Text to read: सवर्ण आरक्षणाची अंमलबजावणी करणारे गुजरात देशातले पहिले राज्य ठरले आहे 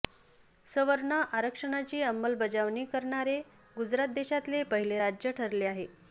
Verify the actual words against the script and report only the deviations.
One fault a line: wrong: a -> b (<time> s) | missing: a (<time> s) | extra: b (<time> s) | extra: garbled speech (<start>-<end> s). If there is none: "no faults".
no faults